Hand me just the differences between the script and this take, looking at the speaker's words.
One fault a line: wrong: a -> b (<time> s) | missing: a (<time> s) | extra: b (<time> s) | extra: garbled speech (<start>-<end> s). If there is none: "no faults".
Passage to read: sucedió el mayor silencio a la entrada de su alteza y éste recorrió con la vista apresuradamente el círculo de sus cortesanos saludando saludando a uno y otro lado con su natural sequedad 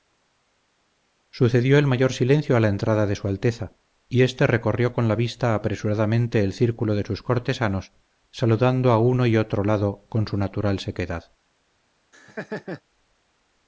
missing: saludando (8.9 s)